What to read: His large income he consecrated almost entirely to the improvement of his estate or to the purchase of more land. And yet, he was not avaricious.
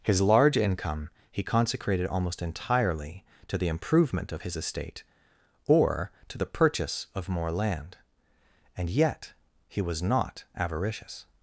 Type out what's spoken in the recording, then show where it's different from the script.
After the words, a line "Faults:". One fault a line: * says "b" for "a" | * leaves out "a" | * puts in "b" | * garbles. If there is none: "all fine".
His large income he consecrated almost entirely to the improvement of his estate or to the purchase of more land. And yet, he was not avaricious.
Faults:
all fine